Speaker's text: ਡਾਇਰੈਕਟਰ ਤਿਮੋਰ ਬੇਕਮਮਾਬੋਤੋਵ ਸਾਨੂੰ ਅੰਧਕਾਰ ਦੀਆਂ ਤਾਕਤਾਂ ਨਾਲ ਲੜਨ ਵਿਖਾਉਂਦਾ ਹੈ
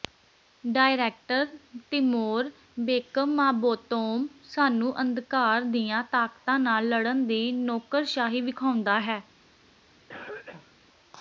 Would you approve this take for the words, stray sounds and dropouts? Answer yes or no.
no